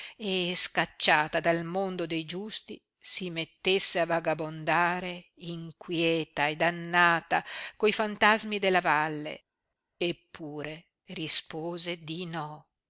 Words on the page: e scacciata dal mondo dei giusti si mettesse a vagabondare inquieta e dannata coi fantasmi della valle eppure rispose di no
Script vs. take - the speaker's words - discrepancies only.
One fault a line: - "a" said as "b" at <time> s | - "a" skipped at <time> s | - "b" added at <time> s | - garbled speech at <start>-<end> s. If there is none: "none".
none